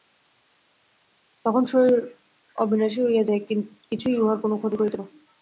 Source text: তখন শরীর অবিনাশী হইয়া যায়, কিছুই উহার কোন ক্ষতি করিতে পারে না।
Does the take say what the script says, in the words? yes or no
no